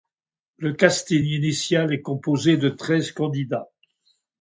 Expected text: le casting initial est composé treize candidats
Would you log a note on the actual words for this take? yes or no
yes